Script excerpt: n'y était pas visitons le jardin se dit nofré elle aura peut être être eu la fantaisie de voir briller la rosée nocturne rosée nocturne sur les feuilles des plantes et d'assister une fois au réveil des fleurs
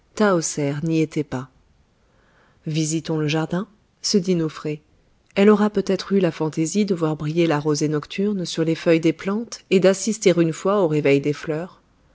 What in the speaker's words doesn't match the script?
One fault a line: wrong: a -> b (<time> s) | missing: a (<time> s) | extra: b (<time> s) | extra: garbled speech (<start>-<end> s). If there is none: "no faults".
missing: être (6.1 s)
missing: rosée nocturne (8.4 s)